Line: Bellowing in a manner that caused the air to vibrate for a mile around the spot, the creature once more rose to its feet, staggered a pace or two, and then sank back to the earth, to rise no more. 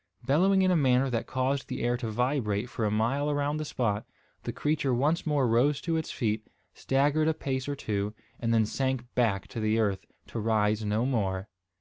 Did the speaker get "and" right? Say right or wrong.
right